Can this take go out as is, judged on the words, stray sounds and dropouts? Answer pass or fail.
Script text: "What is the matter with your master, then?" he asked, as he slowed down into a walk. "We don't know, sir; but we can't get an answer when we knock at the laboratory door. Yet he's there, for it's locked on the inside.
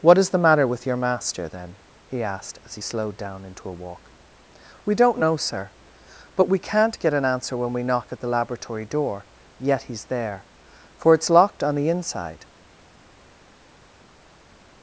pass